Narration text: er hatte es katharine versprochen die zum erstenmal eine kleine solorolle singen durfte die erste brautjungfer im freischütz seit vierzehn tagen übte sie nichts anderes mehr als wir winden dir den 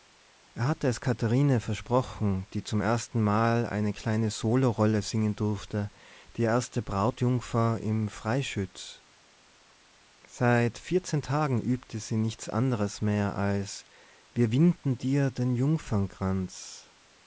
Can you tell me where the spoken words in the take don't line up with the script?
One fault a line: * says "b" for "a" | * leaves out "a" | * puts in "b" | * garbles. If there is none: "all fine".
all fine